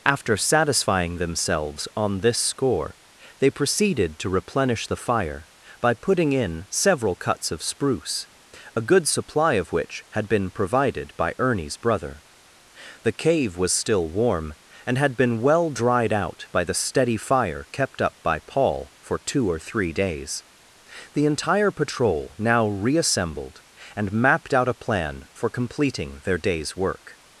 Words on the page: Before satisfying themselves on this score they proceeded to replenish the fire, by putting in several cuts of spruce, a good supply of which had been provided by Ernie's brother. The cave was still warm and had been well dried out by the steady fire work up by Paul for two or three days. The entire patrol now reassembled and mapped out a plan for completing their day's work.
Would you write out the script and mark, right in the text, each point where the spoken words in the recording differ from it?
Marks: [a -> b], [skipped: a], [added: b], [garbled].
[Before -> After] satisfying themselves on this score they proceeded to replenish the fire, by putting in several cuts of spruce, a good supply of which had been provided by Ernie's brother. The cave was still warm and had been well dried out by the steady fire [work -> kept] up by Paul for two or three days. The entire patrol now reassembled and mapped out a plan for completing their day's work.